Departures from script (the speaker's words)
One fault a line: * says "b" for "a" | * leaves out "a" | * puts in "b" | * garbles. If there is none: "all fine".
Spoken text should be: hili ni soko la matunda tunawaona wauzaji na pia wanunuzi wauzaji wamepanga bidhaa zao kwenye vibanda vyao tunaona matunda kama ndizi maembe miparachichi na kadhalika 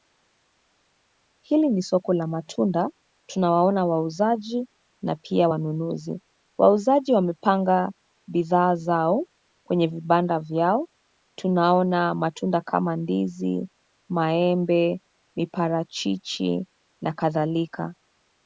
all fine